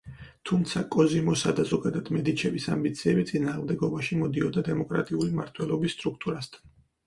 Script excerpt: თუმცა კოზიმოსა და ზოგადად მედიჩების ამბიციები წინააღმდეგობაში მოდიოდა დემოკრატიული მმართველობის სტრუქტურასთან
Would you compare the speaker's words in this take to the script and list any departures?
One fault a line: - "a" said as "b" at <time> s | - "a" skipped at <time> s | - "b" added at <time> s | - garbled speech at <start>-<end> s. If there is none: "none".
none